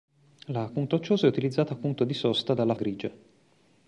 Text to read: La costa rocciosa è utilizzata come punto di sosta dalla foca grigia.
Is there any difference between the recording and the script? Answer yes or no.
yes